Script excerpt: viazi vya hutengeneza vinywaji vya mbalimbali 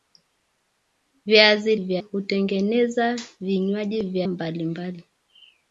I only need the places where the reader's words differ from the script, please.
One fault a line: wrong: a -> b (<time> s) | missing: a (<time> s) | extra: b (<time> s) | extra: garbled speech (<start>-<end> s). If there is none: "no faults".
no faults